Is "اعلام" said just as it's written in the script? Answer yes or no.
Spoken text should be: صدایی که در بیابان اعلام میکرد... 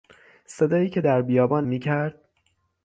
no